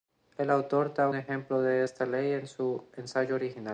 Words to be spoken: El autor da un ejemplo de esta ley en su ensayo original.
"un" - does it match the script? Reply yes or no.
no